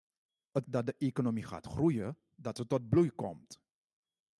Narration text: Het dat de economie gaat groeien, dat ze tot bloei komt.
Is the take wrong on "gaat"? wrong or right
right